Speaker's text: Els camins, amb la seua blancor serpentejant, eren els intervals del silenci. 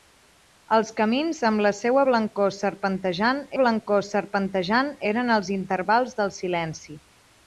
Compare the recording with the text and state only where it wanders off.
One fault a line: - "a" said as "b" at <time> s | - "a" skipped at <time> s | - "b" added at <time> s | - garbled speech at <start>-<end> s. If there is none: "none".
- "blancor serpentejant" added at 3.6 s